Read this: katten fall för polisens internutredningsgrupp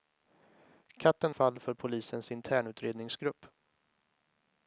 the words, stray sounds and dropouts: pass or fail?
pass